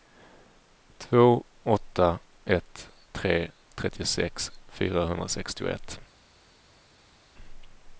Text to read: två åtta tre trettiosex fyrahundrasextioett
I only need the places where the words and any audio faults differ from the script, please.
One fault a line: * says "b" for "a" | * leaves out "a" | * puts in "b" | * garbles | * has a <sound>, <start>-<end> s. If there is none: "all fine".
* puts in "ett"